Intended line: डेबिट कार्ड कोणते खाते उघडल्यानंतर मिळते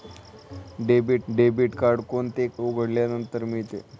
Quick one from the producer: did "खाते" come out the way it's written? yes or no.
no